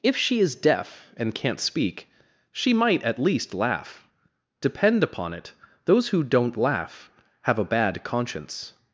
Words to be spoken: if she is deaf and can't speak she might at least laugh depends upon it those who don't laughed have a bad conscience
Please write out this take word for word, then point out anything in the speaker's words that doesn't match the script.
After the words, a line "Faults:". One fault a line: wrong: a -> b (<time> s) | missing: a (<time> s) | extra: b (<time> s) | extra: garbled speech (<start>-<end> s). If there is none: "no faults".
if she is deaf and can't speak she might at least laugh depend upon it those who don't laugh have a bad conscience
Faults:
wrong: depends -> depend (4.6 s)
wrong: laughed -> laugh (6.6 s)